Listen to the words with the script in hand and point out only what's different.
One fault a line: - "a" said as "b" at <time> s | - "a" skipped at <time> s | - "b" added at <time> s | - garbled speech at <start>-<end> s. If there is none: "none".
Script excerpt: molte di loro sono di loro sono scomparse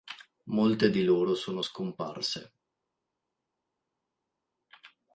- "di loro sono" skipped at 1.6 s